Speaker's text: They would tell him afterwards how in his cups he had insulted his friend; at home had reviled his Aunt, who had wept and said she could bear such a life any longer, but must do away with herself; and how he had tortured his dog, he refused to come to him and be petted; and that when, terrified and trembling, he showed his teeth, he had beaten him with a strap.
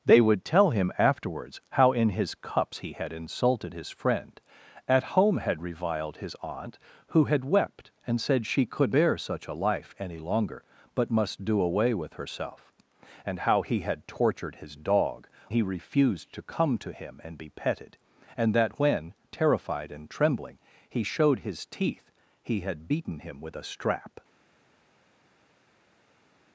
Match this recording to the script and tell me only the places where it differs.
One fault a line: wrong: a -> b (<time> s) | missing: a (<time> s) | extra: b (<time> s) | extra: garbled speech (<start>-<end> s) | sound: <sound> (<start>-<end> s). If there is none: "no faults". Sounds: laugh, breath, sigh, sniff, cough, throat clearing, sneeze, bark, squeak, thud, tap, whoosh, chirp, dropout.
no faults